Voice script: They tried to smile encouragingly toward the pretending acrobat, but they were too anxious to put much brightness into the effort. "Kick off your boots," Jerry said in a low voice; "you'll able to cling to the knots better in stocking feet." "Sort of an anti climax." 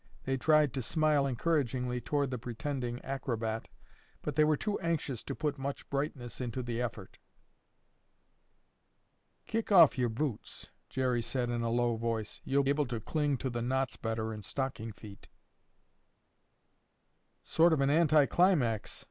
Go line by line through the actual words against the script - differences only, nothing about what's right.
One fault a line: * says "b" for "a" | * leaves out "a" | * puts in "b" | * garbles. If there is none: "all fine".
all fine